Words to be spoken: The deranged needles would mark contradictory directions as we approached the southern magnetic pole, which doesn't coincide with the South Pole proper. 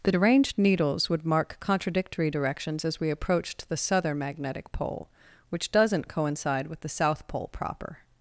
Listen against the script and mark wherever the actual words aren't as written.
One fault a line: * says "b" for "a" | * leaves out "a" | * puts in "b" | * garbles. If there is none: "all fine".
all fine